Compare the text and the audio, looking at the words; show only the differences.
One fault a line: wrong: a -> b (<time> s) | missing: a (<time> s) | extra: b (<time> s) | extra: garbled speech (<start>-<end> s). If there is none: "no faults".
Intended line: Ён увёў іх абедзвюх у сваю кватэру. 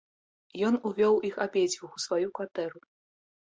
no faults